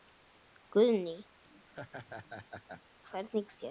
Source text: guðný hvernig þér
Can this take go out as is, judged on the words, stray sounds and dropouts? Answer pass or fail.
fail